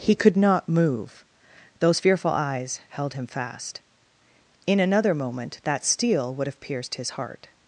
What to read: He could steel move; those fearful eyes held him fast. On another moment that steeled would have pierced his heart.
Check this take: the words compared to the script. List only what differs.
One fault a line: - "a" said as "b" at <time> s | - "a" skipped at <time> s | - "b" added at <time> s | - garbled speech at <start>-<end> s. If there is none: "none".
- "steel" said as "not" at 0.3 s
- "On" said as "In" at 4.6 s
- "steeled" said as "steel" at 5.8 s